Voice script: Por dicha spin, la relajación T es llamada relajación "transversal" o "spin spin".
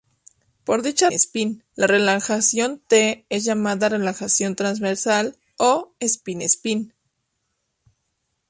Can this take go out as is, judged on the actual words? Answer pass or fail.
pass